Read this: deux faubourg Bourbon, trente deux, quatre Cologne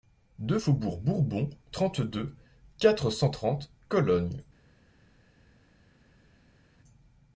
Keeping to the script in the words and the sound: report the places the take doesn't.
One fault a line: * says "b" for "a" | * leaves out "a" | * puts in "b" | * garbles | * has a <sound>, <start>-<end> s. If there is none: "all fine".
* puts in "cent trente"